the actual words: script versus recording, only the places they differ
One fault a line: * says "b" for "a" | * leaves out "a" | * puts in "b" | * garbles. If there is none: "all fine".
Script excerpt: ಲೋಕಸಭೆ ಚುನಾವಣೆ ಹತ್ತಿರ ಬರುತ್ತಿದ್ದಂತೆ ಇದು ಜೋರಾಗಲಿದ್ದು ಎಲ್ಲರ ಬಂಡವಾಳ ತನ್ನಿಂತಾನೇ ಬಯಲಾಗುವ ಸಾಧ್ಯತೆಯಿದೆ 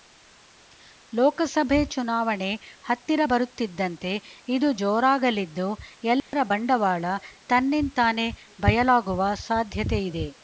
all fine